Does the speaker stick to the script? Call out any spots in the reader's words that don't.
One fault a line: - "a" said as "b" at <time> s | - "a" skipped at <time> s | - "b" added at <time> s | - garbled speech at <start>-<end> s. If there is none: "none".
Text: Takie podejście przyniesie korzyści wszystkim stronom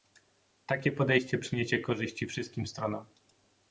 none